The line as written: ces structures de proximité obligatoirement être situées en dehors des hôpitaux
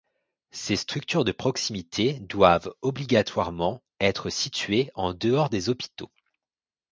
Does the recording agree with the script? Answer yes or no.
no